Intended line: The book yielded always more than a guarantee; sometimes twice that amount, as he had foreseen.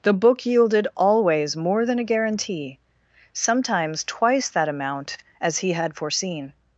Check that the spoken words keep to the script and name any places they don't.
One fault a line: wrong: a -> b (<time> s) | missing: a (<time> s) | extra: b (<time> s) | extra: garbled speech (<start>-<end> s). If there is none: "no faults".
no faults